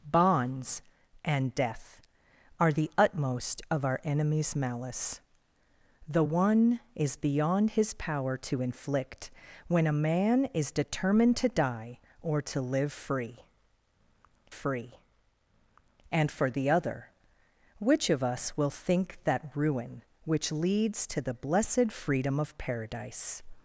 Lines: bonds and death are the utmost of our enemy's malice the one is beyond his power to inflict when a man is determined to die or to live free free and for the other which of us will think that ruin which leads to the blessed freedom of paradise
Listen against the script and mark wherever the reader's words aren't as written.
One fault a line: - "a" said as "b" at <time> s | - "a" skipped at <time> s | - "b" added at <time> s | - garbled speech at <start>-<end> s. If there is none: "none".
none